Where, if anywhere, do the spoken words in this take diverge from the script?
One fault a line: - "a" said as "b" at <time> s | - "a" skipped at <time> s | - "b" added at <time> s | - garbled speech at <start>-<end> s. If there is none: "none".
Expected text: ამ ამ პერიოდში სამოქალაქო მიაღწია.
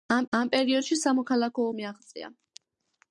none